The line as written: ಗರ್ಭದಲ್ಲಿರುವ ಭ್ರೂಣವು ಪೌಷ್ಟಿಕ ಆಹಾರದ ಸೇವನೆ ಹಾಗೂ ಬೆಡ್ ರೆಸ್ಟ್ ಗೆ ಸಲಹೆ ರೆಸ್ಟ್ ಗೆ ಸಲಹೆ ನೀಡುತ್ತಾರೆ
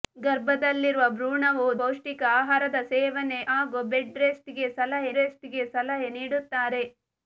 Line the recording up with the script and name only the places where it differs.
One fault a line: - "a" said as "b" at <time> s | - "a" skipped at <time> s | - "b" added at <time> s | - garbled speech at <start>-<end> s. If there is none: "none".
none